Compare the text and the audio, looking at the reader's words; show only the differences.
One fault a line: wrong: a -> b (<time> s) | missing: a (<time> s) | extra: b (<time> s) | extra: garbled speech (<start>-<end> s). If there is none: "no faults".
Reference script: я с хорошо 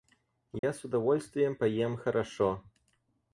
extra: удовольствием поем (0.8 s)